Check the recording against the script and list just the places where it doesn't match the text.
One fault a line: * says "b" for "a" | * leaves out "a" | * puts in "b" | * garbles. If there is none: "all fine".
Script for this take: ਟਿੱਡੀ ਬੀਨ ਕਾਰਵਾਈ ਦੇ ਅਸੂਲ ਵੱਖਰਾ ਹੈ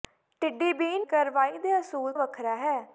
all fine